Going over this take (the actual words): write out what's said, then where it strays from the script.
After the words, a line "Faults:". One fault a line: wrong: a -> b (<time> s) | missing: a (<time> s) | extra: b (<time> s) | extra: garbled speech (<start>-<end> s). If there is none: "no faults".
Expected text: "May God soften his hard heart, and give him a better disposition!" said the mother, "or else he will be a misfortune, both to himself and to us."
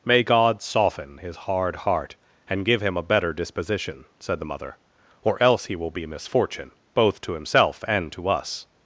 "May God soften his hard heart, and give him a better disposition!" said the mother, "or else he will be misfortune, both to himself and to us."
Faults:
missing: a (6.0 s)